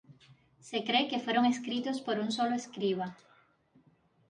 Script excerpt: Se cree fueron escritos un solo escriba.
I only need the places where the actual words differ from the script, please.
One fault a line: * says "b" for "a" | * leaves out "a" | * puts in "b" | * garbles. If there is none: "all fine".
* puts in "que"
* puts in "por"